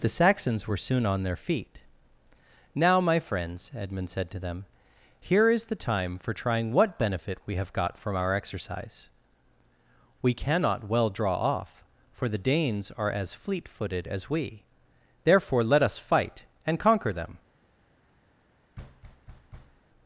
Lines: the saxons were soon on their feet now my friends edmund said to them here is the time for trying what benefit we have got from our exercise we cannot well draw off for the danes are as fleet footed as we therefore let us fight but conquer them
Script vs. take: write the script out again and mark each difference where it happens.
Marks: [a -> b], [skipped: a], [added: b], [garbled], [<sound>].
the saxons were soon on their feet now my friends edmund said to them here is the time for trying what benefit we have got from our exercise we cannot well draw off for the danes are as fleet footed as we therefore let us fight [but -> and] conquer them [thud]